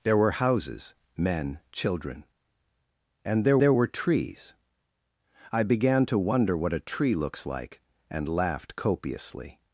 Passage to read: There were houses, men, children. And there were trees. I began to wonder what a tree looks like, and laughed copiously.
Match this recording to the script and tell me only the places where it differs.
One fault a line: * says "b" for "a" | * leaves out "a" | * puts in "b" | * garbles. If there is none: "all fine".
* puts in "there"